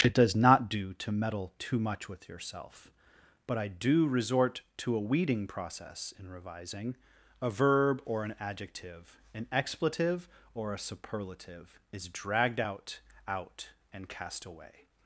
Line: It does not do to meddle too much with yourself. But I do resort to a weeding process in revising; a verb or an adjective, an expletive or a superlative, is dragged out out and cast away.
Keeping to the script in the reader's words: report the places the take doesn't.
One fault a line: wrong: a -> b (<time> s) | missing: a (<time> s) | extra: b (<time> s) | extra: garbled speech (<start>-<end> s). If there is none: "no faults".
no faults